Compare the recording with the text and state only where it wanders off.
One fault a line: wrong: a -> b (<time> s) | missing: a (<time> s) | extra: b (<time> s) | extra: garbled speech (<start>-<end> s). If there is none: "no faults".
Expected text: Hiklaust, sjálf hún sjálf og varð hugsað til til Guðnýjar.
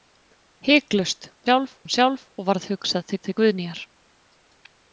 no faults